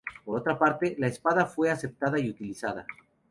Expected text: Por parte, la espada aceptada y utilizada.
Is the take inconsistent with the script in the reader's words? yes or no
yes